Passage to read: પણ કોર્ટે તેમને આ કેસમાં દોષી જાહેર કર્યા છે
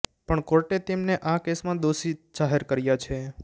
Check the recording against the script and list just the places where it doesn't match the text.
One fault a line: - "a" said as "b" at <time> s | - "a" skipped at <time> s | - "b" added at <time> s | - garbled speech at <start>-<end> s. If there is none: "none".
none